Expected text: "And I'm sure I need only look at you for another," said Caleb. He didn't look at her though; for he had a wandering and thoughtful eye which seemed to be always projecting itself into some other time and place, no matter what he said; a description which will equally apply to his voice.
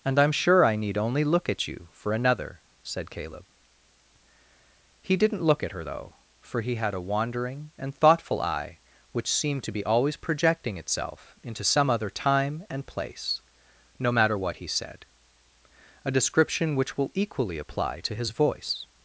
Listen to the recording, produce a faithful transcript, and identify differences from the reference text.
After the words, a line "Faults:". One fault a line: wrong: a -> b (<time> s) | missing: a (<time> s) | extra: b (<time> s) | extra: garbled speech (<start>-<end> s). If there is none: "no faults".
"And I'm sure I need only look at you for another," said Caleb. He didn't look at her though; for he had a wandering and thoughtful eye which seemed to be always projecting itself into some other time and place, no matter what he said; a description which will equally apply to his voice.
Faults:
no faults